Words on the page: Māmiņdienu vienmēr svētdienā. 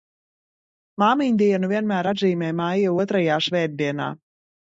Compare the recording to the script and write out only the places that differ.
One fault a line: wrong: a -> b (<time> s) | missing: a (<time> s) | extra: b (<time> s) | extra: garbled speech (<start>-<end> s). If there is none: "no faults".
extra: atzīmē maija otrajā (2.1 s)